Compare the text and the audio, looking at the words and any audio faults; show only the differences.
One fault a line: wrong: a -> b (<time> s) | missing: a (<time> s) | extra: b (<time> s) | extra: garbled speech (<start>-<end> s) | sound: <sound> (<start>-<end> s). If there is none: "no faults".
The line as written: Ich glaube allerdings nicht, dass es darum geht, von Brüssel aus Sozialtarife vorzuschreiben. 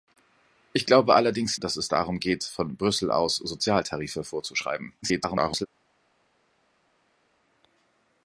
missing: nicht (1.6 s)
extra: garbled speech (5.0-5.7 s)